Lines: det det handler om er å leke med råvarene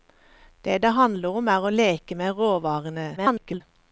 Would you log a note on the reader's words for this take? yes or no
yes